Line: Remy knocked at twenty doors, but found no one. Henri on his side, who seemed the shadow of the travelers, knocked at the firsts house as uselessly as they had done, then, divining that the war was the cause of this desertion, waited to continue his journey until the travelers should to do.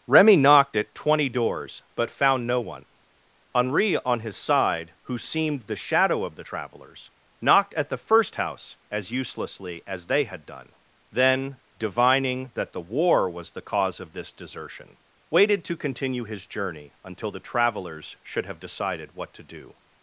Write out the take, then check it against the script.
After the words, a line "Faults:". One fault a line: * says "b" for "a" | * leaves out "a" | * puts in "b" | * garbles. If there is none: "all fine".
Remy knocked at twenty doors, but found no one. Henri on his side, who seemed the shadow of the travelers, knocked at the first house as uselessly as they had done, then, divining that the war was the cause of this desertion, waited to continue his journey until the travelers should have decided what to do.
Faults:
* says "first" for "firsts"
* puts in "have decided what"